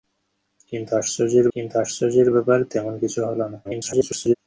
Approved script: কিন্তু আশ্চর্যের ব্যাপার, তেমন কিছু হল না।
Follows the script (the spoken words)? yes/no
no